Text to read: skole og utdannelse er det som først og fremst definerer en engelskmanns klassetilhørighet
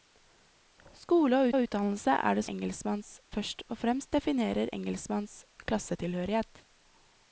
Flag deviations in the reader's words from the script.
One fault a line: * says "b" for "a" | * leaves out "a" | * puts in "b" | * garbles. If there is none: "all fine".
* puts in "og"
* says "engelskmanns" for "som"
* leaves out "en"